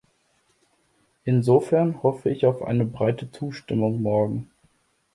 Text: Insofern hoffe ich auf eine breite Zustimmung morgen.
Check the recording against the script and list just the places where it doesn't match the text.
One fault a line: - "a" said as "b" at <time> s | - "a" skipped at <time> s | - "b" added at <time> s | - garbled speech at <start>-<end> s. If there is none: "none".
none